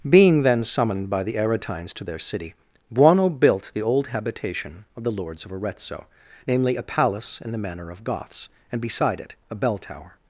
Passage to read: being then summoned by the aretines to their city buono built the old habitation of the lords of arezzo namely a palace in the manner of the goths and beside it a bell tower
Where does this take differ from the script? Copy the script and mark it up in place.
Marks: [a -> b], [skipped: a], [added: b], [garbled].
being then summoned by the aretines to their city buono built the old habitation of the lords of arezzo namely a palace in the manner of [skipped: the] goths and beside it a bell tower